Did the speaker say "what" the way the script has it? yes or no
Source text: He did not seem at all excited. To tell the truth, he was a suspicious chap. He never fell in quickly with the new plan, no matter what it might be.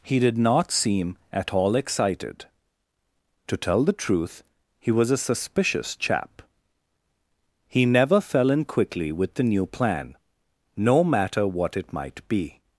yes